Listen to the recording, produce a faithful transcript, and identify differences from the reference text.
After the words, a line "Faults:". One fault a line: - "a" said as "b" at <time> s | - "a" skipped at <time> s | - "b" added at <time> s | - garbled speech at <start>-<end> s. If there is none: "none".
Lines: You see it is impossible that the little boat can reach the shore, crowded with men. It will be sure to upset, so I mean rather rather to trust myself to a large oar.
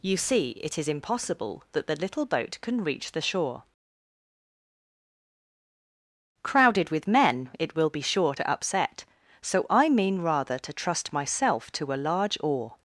You see it is impossible that the little boat can reach the shore, crowded with men. It will be sure to upset, so I mean rather to trust myself to a large oar.
Faults:
- "rather" skipped at 10.6 s